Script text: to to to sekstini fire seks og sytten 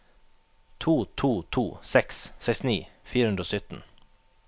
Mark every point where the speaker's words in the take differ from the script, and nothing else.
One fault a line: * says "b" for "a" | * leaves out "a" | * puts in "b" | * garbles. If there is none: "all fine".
* puts in "seks"
* says "hundre" for "seks"